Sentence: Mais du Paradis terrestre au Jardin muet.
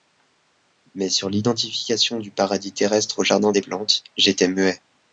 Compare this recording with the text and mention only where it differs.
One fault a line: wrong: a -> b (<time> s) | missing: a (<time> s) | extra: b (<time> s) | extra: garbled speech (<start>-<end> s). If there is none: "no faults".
extra: sur l'identification (1.1 s)
extra: des Plantes j'étais (3.5 s)